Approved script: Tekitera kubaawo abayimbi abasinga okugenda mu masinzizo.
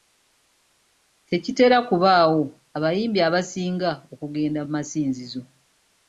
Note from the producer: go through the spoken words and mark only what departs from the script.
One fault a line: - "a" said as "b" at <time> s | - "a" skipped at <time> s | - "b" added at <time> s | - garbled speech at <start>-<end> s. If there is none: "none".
none